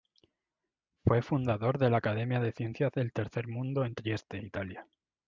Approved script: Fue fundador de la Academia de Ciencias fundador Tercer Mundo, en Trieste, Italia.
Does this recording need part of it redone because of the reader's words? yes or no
yes